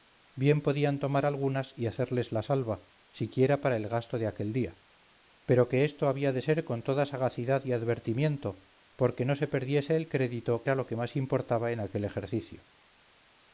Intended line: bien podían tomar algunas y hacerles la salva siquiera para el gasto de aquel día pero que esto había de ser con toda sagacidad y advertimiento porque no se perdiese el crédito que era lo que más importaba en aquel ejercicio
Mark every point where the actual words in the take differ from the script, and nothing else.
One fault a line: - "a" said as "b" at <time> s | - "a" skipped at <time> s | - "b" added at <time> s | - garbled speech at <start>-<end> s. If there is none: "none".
- "que" skipped at 10.7 s